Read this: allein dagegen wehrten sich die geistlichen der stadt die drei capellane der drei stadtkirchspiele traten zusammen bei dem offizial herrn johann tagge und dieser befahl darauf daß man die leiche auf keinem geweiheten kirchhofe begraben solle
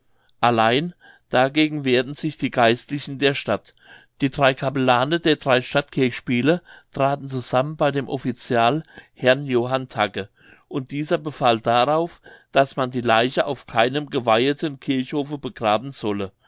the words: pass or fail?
pass